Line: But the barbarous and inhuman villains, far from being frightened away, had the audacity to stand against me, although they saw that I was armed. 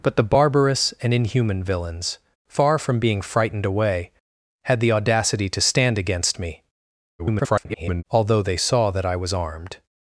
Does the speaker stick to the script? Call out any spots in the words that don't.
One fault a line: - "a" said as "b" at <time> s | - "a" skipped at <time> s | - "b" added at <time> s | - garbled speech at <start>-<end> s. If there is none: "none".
- garbled speech at 7.2-8.0 s